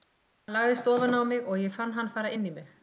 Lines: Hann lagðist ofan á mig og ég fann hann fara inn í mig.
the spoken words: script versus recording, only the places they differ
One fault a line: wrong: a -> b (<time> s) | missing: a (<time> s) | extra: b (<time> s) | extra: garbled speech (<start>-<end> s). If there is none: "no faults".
no faults